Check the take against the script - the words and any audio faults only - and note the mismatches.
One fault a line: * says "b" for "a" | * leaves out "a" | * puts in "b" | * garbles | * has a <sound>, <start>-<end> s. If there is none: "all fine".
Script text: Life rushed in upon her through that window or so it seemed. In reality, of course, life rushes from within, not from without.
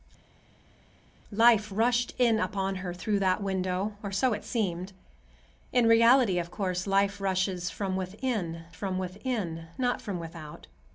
* puts in "from within"